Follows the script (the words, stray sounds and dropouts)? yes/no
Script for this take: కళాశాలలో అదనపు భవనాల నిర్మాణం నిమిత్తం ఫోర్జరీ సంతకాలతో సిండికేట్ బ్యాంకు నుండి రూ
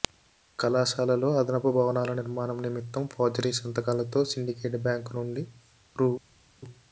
yes